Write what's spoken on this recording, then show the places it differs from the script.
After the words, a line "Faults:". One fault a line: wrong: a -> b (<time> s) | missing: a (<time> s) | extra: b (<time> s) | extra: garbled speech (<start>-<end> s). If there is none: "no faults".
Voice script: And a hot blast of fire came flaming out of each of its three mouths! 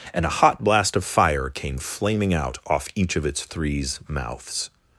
And a hot blast of fire came flaming out off each of its threes mouths!
Faults:
wrong: of -> off (2.7 s)
wrong: three -> threes (3.4 s)